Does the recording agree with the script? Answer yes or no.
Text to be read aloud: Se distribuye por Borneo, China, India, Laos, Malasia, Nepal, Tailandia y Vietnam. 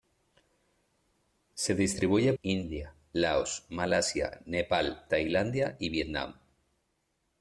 no